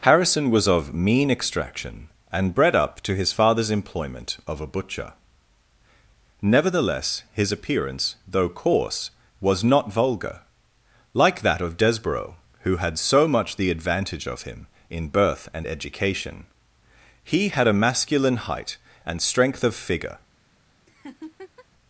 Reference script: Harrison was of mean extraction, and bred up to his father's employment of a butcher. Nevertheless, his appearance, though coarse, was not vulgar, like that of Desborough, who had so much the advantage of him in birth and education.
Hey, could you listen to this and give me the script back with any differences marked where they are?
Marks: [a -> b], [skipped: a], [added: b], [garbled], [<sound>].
Harrison was of mean extraction, and bred up to his father's employment of a butcher. Nevertheless, his appearance, though coarse, was not vulgar, like that of Desborough, who had so much the advantage of him in birth and education. [added: He had a masculine height and strength of figure] [laugh]